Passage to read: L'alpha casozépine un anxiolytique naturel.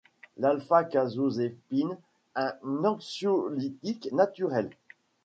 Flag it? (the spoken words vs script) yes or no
no